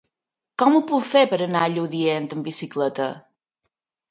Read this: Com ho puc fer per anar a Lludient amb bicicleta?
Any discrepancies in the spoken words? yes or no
no